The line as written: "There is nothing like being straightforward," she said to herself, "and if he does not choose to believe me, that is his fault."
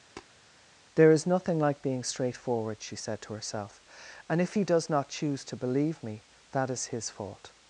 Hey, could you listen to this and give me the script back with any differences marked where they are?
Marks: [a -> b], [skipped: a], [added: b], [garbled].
"There is nothing like being straightforward," she said to herself, "and if he does not choose to believe me, that is his fault."